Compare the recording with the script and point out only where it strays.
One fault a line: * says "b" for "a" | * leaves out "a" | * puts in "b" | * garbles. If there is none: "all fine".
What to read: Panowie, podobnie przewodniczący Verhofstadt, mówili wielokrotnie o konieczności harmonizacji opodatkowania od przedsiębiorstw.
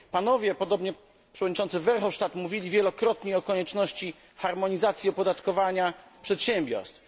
* leaves out "od"